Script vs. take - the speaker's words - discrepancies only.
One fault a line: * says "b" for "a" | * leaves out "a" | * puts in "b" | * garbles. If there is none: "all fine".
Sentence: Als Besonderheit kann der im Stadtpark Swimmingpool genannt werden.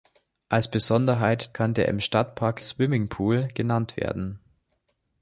all fine